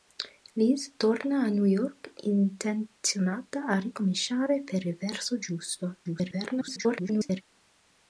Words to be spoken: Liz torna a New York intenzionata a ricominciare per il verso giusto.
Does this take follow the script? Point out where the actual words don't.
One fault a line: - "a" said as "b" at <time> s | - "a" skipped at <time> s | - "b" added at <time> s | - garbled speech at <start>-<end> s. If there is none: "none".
- garbled speech at 6.0-7.4 s